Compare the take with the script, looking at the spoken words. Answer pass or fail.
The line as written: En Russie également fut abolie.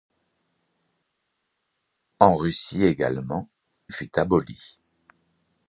pass